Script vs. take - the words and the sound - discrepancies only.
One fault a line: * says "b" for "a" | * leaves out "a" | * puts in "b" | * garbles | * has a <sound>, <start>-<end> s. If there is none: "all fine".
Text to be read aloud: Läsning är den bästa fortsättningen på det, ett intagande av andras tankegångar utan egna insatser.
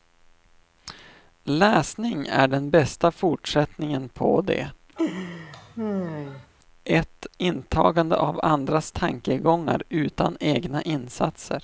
* has a laugh, 5.0-6.5 s